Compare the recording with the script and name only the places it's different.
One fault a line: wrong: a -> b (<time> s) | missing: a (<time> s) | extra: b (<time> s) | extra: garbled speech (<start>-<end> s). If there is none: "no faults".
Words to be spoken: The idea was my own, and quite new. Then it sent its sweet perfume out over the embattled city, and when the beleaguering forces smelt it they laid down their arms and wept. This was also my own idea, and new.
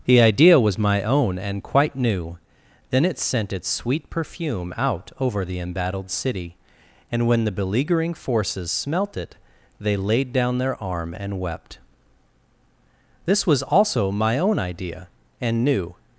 wrong: arms -> arm (10.8 s)